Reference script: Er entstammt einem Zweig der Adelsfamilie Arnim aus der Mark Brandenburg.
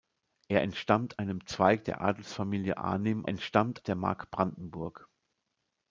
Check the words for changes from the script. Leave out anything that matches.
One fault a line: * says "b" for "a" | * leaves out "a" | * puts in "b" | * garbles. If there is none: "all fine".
* says "entstammt" for "aus"